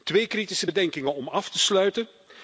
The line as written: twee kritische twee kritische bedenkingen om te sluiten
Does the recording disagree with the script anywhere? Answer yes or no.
yes